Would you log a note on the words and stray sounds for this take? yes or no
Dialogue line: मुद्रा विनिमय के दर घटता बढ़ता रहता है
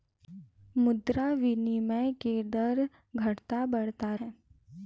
yes